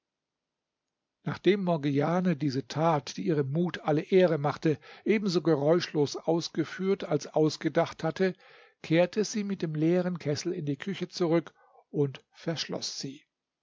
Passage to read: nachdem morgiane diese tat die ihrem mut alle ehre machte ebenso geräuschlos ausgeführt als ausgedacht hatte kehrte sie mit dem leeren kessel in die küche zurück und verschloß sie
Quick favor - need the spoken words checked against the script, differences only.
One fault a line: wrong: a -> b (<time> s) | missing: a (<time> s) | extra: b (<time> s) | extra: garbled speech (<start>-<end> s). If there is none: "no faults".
no faults